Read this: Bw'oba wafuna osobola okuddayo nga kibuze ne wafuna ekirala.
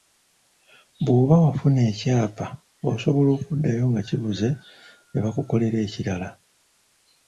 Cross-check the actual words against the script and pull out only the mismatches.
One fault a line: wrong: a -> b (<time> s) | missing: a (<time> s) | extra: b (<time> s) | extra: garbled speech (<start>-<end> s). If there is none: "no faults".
extra: ekyapa (1.9 s)
wrong: wafuna -> bakukolera (5.2 s)